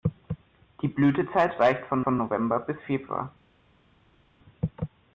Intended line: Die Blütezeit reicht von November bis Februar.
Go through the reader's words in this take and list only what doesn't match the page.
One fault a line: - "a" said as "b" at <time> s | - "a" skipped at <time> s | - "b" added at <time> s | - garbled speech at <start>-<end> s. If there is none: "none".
- "von" added at 2.0 s